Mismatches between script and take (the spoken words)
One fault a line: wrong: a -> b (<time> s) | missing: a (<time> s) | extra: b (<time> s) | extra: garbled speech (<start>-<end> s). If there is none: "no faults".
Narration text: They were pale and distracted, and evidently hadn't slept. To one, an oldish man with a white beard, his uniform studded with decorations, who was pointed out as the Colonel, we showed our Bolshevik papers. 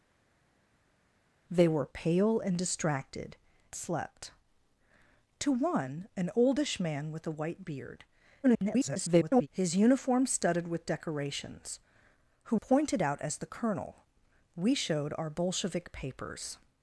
missing: and evidently hadn't (3.4 s)
extra: garbled speech (8.4-9.5 s)
missing: was (12.6 s)